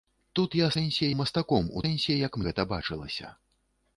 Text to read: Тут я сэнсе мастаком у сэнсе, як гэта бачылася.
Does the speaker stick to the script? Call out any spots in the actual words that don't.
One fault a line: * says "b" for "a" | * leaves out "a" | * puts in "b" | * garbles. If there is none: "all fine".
all fine